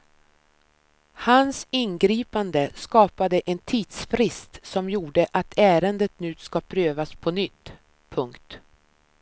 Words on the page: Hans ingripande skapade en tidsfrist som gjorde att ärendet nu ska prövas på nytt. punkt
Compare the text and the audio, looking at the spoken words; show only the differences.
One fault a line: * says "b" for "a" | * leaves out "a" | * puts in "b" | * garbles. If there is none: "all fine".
all fine